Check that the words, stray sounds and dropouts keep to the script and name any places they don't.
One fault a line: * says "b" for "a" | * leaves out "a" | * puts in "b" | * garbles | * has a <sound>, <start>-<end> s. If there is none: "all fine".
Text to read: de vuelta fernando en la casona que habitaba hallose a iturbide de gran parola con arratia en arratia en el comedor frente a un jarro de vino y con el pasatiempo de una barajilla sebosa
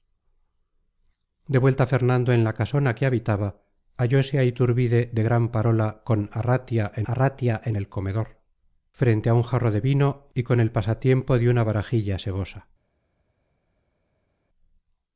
all fine